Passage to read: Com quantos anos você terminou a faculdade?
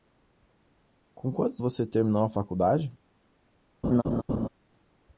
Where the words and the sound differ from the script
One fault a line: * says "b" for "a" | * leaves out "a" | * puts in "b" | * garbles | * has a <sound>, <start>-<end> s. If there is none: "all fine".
* leaves out "anos"
* has a laugh, 3.8-4.5 s